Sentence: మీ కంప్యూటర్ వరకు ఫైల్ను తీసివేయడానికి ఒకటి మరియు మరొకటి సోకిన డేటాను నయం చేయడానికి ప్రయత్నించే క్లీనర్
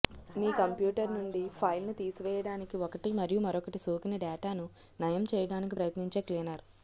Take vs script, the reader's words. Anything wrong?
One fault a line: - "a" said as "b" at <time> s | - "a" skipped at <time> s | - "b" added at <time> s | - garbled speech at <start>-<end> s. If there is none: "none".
- "వరకు" said as "నుండి" at 1.1 s